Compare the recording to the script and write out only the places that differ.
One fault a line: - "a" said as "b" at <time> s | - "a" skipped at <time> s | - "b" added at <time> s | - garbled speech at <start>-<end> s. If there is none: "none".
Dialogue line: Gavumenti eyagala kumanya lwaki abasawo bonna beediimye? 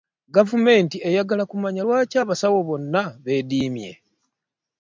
none